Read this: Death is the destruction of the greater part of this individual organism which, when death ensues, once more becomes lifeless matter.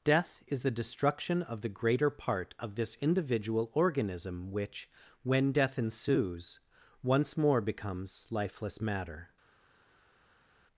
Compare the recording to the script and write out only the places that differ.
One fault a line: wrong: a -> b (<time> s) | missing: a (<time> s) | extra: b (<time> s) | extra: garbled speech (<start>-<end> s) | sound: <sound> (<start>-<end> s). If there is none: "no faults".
no faults